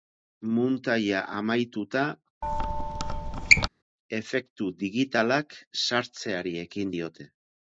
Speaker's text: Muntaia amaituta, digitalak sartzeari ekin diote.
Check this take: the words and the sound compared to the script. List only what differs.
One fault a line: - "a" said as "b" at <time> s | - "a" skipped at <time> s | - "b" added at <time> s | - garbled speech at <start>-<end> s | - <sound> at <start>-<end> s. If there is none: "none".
- squeak at 2.4-3.7 s
- "efektu" added at 4.2 s